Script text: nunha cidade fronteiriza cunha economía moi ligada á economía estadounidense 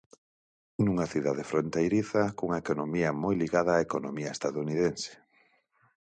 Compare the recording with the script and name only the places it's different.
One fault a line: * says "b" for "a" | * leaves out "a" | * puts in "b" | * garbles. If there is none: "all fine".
all fine